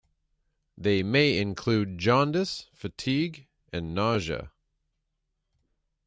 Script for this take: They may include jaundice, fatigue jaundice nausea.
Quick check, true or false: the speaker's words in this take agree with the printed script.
false